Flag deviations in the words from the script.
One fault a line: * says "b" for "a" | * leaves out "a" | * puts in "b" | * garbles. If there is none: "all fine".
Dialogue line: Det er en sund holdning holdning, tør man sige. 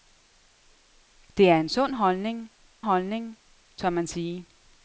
all fine